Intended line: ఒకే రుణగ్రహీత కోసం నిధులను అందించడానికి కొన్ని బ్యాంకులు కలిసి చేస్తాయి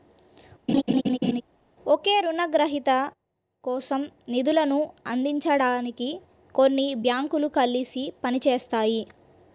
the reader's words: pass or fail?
fail